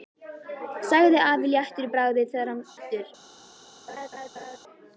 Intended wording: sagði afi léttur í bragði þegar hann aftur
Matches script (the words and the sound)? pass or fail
fail